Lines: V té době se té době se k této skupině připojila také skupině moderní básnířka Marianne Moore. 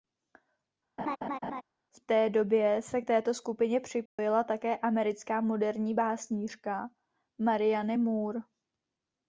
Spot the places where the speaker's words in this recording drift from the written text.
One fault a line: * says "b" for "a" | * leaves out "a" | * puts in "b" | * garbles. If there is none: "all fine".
* leaves out "té době se"
* says "americká" for "skupině"